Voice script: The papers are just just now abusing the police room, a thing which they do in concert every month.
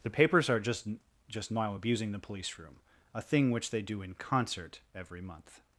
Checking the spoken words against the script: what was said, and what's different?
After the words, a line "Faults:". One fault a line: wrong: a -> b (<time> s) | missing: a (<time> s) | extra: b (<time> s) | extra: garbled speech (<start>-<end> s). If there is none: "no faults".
The papers are just just now abusing the police room, a thing which they do in concert every month.
Faults:
no faults